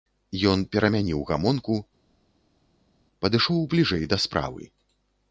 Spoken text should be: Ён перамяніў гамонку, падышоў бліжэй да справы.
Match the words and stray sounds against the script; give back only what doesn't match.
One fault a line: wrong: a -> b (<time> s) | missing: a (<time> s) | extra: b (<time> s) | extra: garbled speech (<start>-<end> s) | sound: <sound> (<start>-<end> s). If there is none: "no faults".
no faults